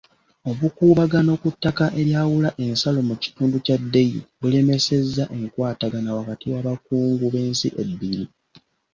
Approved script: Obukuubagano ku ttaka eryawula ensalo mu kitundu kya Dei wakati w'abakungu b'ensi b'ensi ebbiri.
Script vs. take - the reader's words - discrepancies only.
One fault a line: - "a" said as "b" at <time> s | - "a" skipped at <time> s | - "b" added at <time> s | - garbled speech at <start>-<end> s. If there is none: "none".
- "bulemesezza enkwatagana" added at 4.4 s
- "b'ensi" skipped at 7.7 s